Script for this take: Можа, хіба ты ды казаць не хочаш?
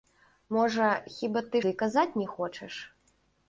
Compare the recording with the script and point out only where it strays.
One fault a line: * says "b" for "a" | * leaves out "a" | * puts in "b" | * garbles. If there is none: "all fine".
all fine